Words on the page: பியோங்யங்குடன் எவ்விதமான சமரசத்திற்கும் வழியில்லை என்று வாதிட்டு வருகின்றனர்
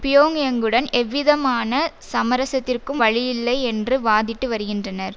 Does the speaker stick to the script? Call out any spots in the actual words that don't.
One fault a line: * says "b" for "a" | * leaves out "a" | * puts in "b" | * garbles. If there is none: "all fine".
all fine